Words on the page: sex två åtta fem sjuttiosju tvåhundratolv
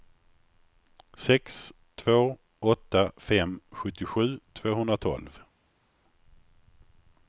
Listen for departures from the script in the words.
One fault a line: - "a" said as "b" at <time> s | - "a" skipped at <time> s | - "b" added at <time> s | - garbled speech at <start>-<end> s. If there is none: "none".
none